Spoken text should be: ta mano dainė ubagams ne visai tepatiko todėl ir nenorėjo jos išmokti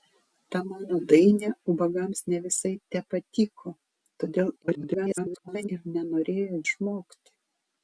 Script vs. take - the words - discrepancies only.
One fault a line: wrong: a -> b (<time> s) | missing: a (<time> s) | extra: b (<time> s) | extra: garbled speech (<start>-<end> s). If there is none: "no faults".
extra: garbled speech (4.6-5.7 s)
missing: jos (6.6 s)